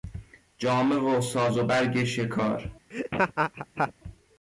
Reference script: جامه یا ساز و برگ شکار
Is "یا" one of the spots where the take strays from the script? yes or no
yes